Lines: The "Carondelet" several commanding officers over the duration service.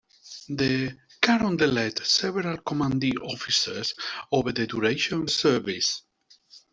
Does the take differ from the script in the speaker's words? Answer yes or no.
no